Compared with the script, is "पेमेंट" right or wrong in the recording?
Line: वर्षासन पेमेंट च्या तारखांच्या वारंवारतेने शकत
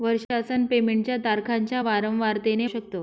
right